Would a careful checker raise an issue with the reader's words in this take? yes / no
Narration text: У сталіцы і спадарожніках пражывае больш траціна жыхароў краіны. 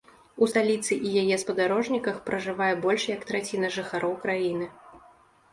yes